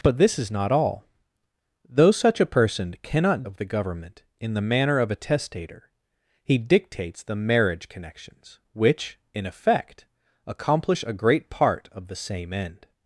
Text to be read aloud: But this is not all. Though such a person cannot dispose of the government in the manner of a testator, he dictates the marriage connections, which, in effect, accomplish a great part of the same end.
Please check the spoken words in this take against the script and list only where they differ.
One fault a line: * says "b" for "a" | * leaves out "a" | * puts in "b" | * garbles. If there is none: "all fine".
* leaves out "dispose"